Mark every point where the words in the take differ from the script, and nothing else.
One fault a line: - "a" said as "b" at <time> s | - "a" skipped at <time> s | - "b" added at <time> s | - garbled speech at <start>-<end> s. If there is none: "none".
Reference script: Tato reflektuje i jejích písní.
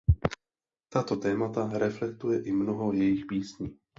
- "témata" added at 1.1 s
- "mnoho" added at 2.5 s